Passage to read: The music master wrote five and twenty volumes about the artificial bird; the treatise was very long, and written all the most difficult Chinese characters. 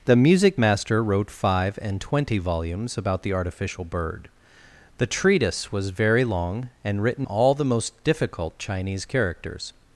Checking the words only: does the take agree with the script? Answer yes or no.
yes